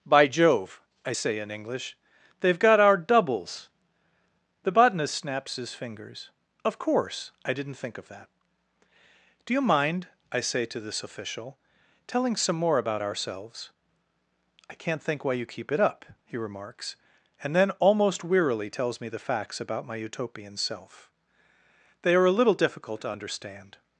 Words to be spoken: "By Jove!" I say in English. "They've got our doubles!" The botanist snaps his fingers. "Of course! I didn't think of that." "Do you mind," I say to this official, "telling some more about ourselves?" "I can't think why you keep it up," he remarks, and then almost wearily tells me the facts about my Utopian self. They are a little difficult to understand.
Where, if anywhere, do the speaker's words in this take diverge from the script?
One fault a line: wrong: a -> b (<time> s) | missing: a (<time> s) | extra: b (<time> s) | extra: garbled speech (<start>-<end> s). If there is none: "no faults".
no faults